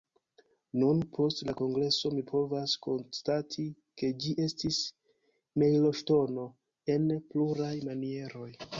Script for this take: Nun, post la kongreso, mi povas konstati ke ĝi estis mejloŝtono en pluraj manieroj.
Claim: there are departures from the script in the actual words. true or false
false